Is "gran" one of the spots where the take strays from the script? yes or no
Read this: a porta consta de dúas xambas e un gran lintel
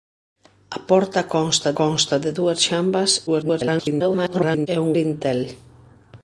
yes